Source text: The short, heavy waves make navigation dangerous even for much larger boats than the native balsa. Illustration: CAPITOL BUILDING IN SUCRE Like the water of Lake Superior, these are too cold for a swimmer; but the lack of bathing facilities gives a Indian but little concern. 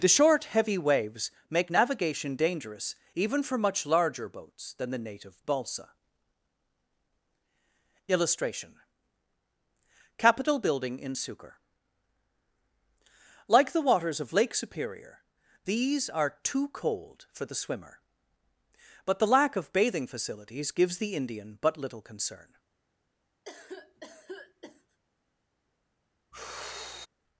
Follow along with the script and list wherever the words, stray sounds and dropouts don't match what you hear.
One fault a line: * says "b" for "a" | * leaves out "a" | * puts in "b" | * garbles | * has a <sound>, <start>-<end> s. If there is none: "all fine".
* says "waters" for "water"
* says "the" for "a"
* says "the" for "a"
* has a cough, 23.4-25.0 s
* has a sigh, 26.3-27.1 s